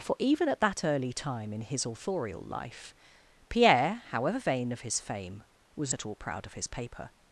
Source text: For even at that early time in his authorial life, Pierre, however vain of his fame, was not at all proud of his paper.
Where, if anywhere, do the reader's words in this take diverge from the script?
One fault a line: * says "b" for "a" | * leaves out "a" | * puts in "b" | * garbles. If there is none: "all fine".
* leaves out "not"